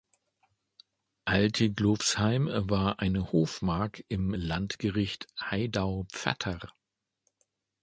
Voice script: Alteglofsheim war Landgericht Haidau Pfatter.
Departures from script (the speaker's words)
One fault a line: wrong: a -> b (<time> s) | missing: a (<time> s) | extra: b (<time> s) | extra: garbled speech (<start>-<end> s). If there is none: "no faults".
extra: eine Hofmark im (3.0 s)